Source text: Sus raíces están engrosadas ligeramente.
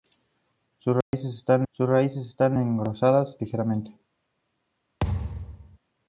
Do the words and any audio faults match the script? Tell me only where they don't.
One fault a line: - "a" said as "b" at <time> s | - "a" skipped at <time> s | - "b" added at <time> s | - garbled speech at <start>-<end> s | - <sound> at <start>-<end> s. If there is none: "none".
- dropout at 1.0-1.1 s
- "sus raíces están" added at 1.7 s
- thud at 5.0-5.8 s